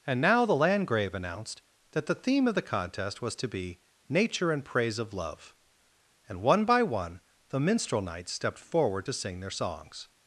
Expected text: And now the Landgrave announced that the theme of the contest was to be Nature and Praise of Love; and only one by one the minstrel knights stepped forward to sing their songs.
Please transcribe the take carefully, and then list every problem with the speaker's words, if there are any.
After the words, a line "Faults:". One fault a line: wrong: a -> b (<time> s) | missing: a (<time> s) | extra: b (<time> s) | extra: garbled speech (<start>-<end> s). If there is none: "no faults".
And now the Landgrave announced that the theme of the contest was to be Nature and Praise of Love; and one by one the minstrel knights stepped forward to sing their songs.
Faults:
missing: only (6.4 s)